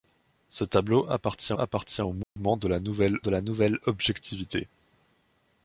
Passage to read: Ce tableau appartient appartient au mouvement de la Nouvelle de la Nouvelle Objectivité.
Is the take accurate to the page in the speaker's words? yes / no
yes